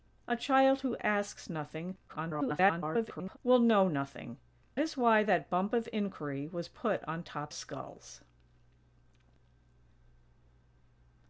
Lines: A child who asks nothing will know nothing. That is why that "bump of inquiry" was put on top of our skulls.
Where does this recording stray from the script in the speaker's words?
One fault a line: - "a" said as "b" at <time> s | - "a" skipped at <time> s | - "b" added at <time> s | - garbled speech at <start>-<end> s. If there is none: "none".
- garbled speech at 2.1-3.4 s
- "That" skipped at 4.4 s
- "of our" skipped at 7.5 s